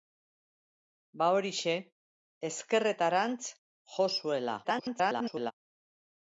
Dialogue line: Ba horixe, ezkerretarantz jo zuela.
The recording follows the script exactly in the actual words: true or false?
false